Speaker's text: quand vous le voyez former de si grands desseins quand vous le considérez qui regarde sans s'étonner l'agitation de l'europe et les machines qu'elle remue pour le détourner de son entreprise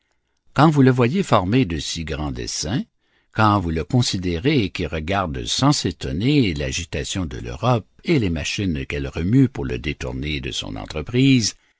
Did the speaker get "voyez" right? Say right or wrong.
right